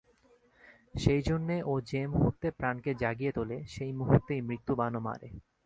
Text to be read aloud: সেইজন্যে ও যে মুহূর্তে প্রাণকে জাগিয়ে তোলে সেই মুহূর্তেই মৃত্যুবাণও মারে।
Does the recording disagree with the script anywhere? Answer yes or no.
no